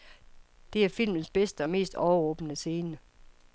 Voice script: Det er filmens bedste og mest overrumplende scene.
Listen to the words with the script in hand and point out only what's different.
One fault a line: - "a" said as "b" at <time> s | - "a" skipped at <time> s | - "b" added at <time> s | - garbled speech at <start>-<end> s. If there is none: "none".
none